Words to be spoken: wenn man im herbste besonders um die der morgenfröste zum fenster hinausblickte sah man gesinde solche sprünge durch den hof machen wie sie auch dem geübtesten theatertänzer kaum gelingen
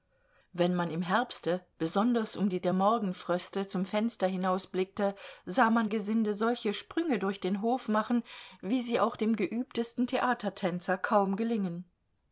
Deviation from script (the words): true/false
false